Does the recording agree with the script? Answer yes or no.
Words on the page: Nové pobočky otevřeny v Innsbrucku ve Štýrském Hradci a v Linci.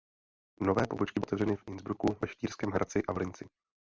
yes